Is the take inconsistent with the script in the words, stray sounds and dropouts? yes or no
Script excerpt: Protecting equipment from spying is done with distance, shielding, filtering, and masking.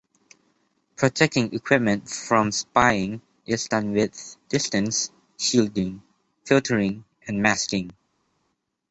no